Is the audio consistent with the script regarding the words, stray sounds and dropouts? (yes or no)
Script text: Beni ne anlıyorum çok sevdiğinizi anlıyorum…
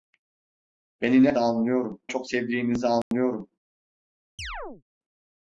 no